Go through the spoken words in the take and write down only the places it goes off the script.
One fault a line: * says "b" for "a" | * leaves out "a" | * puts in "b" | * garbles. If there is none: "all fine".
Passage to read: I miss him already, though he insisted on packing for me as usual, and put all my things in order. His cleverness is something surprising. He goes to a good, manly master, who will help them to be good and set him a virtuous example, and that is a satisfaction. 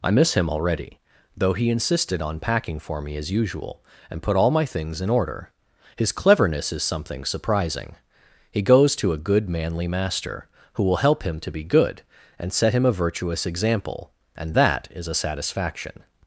* says "him" for "them"